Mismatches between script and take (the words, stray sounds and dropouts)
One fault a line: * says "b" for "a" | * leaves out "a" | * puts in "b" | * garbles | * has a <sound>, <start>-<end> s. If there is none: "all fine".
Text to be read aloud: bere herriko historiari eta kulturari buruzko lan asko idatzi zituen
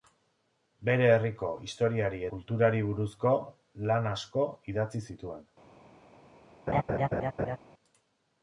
* leaves out "eta"
* has a laugh, 6.7-7.6 s